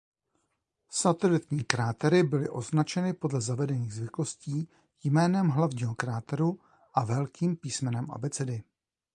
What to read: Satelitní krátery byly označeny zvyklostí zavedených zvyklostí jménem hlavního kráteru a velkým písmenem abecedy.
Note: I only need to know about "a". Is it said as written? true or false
true